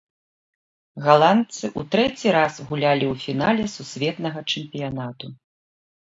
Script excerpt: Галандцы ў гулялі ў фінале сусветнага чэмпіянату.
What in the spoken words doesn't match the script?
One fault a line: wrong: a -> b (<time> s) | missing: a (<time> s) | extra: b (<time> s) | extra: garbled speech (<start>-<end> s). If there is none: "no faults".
extra: трэці раз (2.0 s)